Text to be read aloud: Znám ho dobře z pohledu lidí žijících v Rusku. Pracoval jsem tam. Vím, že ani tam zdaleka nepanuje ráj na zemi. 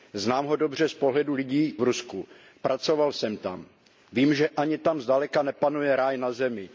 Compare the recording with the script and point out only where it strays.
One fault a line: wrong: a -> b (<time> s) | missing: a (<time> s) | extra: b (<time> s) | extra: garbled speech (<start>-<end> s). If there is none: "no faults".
missing: žijících (1.8 s)